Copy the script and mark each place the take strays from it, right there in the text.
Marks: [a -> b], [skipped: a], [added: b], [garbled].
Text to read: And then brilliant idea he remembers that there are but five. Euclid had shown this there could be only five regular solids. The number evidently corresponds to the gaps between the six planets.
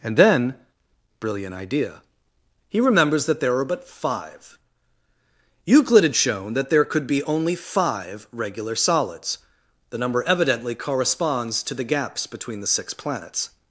And then brilliant idea he remembers that there are but five. Euclid had shown [this -> that] there could be only five regular solids. The number evidently corresponds to the gaps between the six planets.